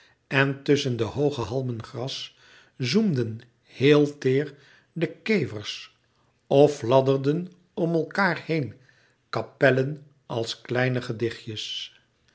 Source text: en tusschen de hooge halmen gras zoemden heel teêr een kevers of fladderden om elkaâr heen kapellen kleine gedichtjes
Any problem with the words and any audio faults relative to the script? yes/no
yes